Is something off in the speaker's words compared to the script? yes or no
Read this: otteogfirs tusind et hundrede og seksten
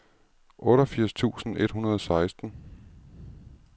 no